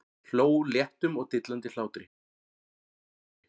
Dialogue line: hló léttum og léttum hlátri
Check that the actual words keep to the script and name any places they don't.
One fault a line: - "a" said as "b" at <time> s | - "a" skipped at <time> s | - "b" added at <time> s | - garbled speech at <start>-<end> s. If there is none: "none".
- "léttum" said as "dillandi" at 1.3 s